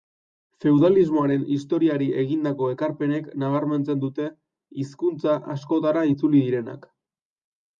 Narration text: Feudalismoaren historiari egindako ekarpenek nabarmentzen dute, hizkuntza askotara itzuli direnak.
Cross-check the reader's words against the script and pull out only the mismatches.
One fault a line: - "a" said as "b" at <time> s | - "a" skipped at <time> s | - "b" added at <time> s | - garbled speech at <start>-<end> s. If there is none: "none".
none